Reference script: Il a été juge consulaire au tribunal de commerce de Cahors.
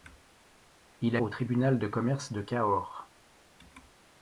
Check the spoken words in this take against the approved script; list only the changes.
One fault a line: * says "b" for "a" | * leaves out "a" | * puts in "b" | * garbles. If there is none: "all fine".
* leaves out "été juge consulaire"